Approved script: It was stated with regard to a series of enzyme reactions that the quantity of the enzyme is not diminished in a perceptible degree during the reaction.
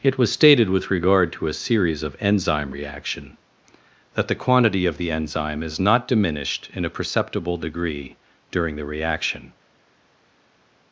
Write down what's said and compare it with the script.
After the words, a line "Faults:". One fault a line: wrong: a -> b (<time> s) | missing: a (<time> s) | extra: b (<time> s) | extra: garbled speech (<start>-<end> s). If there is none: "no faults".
It was stated with regard to a series of enzyme reaction that the quantity of the enzyme is not diminished in a perceptible degree during the reaction.
Faults:
wrong: reactions -> reaction (2.7 s)